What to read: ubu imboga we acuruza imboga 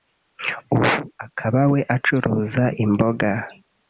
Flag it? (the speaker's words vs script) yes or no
yes